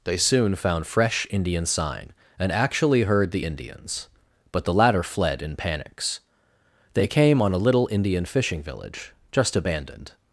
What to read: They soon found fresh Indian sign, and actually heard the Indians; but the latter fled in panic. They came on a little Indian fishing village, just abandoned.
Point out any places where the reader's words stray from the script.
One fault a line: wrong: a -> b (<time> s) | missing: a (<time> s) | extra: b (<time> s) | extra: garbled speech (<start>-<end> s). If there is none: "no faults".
wrong: panic -> panics (5.6 s)